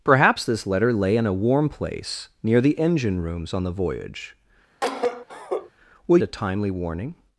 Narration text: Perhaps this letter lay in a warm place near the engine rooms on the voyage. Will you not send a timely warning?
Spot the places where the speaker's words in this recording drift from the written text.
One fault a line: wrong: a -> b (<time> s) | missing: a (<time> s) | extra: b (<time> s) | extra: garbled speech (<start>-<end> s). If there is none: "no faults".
missing: you not send (6.2 s)